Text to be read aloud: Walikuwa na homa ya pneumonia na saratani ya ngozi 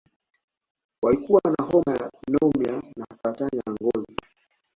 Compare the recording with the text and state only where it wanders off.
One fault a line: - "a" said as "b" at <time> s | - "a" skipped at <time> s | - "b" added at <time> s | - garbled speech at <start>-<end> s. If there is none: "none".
none